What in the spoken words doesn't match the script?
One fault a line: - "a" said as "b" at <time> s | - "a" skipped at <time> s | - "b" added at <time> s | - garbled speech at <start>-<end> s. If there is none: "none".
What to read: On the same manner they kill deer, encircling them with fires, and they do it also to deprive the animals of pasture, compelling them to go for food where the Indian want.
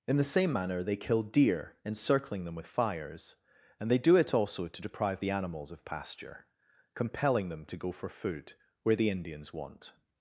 - "On" said as "In" at 0.1 s
- "Indian" said as "Indians" at 9.1 s